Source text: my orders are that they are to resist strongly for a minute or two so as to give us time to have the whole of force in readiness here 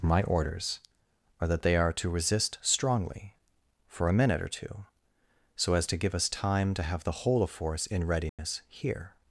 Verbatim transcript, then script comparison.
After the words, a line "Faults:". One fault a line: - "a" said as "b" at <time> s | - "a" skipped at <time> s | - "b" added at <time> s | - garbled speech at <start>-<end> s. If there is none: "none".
my orders are that they are to resist strongly for a minute or two so as to give us time to have the whole of force in readiness here
Faults:
none